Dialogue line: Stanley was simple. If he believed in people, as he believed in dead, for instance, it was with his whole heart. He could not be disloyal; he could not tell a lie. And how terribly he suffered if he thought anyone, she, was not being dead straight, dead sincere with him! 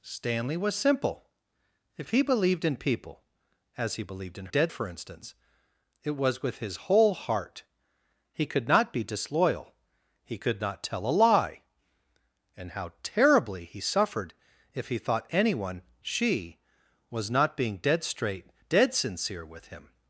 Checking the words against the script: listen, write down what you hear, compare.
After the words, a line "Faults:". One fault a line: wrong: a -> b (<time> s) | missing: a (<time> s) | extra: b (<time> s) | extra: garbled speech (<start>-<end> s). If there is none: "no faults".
Stanley was simple. If he believed in people, as he believed in dead, for instance, it was with his whole heart. He could not be disloyal; he could not tell a lie. And how terribly he suffered if he thought anyone, she, was not being dead straight, dead sincere with him!
Faults:
no faults